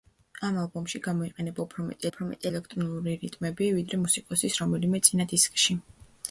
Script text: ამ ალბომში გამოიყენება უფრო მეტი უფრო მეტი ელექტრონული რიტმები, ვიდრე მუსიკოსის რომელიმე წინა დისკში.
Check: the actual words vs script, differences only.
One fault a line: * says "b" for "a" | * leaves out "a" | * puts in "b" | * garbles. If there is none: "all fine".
all fine